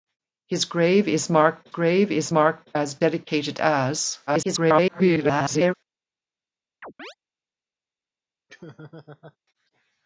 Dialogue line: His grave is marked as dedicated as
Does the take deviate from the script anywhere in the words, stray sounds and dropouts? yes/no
yes